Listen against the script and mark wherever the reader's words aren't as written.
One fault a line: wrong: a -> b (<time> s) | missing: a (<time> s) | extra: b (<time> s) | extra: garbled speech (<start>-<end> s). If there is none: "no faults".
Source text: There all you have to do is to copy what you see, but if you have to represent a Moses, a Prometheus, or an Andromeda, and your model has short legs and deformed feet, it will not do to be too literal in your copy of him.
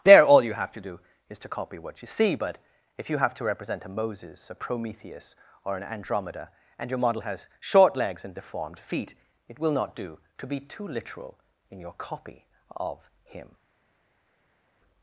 no faults